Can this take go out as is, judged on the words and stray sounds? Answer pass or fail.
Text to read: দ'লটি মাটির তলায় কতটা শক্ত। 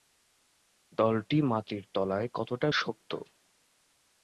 pass